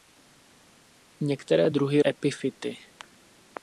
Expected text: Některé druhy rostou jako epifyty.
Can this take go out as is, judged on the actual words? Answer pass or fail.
fail